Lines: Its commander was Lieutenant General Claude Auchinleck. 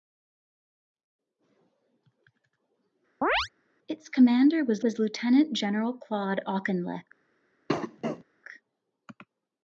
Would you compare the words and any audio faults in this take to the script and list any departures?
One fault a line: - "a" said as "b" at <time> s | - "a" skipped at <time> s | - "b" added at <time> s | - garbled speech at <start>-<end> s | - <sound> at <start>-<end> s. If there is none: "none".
- chirp at 3.2-3.5 s
- "was" added at 4.8 s
- cough at 7.7-8.2 s